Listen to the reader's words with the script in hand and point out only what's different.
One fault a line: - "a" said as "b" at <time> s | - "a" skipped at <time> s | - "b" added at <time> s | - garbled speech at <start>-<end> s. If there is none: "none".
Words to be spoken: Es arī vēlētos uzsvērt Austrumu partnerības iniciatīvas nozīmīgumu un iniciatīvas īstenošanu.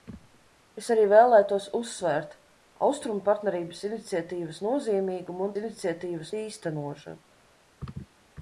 none